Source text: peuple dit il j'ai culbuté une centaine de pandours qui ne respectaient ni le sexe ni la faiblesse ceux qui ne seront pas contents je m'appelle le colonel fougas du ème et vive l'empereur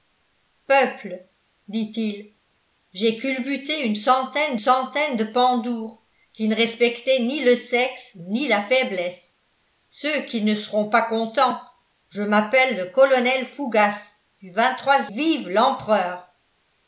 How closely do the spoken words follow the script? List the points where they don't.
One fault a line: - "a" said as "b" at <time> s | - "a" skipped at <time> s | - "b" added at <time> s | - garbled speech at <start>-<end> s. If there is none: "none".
- "centaine" added at 4.5 s
- "ème et" skipped at 14.5 s